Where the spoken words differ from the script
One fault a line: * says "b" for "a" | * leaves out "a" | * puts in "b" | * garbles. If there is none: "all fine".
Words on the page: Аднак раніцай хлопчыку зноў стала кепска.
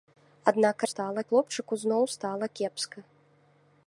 * says "стала" for "раніцай"